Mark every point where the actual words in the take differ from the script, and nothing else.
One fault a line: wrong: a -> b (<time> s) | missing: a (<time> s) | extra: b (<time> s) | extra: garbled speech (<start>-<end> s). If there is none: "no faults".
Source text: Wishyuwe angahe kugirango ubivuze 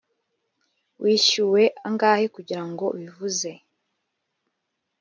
no faults